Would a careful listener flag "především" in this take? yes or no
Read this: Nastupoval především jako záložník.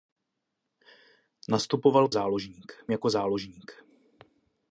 yes